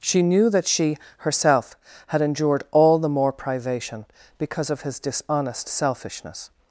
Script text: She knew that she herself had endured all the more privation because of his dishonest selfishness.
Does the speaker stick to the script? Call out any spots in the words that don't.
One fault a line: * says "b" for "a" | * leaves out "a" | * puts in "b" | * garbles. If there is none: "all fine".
all fine